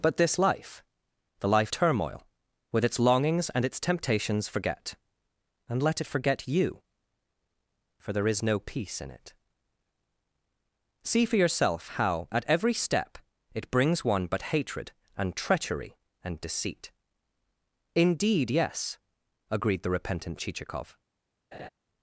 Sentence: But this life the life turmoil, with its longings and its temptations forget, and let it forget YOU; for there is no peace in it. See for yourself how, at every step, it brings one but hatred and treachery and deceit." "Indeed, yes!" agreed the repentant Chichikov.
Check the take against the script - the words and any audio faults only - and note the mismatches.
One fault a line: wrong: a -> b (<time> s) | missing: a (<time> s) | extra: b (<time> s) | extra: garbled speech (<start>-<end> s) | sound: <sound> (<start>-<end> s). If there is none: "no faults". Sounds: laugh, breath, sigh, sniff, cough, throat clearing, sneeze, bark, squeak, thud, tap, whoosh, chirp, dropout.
sound: laugh (21.5-21.7 s)